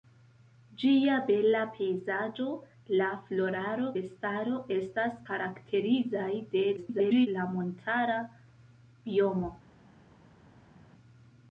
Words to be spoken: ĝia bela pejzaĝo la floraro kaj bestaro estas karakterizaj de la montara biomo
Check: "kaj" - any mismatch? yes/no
yes